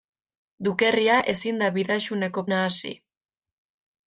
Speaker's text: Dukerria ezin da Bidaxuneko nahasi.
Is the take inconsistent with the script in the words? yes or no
no